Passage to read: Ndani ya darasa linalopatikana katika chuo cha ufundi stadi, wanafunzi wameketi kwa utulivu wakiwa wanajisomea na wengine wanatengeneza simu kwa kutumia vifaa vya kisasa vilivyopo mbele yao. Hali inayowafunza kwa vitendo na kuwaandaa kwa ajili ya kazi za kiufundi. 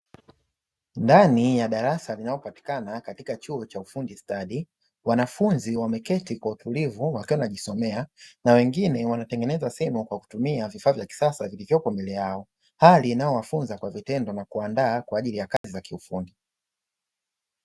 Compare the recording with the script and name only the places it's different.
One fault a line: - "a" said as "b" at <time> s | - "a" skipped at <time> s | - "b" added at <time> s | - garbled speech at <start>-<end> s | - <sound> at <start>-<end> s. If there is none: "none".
- dropout at 15.6-15.6 s